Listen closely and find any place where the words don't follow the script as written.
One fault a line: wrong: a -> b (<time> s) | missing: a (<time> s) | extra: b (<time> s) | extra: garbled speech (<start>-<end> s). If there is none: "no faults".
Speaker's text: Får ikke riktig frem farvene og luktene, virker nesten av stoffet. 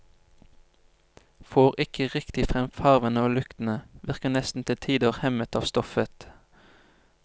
extra: til tider hemmet (4.7 s)